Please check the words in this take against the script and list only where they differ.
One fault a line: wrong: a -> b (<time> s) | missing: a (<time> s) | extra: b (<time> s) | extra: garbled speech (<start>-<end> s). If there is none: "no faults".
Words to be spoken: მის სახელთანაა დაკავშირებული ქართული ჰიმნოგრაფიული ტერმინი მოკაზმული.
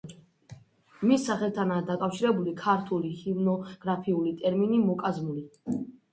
no faults